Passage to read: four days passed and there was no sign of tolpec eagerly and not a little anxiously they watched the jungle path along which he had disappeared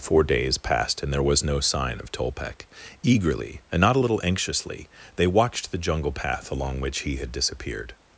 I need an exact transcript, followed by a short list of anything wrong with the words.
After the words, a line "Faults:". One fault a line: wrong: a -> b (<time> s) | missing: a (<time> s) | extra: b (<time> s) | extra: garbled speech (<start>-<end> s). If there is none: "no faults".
four days passed and there was no sign of tolpec eagerly and not a little anxiously they watched the jungle path along which he had disappeared
Faults:
no faults